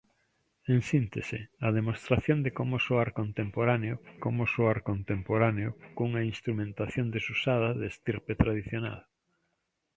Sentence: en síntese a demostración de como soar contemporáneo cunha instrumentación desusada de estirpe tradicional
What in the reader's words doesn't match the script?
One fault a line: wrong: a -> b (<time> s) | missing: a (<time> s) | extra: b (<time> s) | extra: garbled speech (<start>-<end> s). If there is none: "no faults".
extra: como soar contemporáneo (4.2 s)